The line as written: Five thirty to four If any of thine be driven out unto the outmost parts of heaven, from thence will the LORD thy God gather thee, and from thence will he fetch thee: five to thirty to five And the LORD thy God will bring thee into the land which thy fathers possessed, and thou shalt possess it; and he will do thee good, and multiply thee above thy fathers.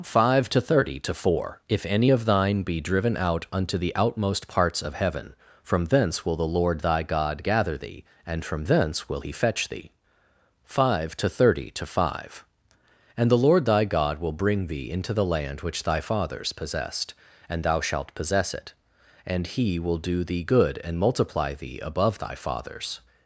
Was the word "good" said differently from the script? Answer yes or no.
no